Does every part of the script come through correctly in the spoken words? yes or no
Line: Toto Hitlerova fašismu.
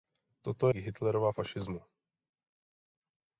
yes